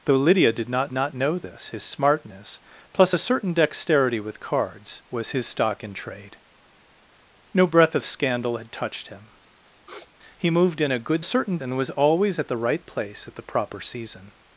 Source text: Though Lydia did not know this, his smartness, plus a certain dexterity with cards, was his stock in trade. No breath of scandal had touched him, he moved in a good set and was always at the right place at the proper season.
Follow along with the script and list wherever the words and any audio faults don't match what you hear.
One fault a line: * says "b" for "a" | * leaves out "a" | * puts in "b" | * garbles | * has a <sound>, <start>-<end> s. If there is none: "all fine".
* puts in "not"
* has a sniff, 9.5-10.1 s
* says "certain" for "set"